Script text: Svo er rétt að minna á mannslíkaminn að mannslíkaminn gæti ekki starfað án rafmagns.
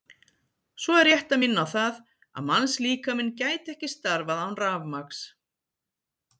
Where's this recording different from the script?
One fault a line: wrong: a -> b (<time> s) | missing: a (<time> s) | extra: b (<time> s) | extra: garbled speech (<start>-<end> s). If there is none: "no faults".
wrong: mannslíkaminn -> það (1.7 s)